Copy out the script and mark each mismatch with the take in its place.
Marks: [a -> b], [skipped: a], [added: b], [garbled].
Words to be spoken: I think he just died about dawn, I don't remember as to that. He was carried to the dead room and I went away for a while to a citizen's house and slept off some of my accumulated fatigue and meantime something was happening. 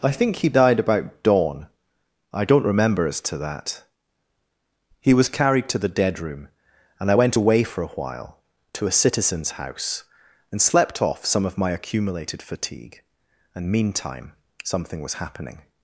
I think he [skipped: just] died about dawn, I don't remember as to that. He was carried to the dead room and I went away for a while to a citizen's house and slept off some of my accumulated fatigue and meantime something was happening.